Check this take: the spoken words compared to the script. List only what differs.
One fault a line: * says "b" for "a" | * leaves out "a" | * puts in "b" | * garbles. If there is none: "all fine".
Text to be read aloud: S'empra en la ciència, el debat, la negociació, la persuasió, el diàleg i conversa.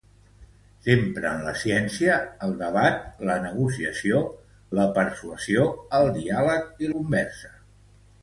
all fine